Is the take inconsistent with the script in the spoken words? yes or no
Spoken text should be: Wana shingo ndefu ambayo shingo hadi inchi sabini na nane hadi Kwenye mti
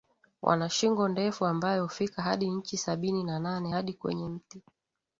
yes